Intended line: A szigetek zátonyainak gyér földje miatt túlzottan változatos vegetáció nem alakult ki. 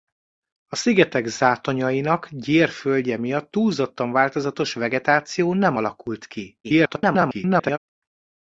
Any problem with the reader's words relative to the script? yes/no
yes